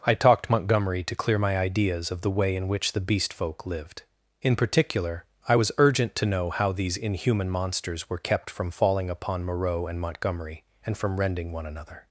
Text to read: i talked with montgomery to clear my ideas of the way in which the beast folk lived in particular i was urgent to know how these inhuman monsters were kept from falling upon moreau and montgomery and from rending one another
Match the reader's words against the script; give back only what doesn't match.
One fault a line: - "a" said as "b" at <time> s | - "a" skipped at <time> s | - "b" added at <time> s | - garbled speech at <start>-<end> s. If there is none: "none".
- "with" skipped at 0.5 s